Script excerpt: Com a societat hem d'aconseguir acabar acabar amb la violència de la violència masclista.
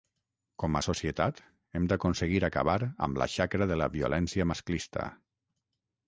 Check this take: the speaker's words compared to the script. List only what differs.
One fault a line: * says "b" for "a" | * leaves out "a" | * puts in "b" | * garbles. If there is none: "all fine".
* leaves out "acabar"
* says "xacra" for "violència"